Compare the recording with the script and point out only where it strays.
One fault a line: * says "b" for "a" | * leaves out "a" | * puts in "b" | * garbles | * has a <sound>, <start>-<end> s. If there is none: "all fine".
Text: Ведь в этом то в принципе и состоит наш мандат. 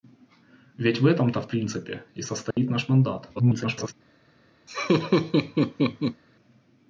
* has a dropout, 2.5-2.6 s
* garbles
* has a laugh, 4.7-6.2 s